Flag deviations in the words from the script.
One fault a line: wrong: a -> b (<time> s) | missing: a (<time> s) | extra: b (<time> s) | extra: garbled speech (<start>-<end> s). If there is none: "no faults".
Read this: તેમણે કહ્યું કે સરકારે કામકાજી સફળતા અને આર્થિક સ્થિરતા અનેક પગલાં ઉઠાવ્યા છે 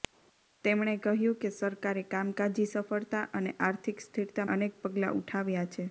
no faults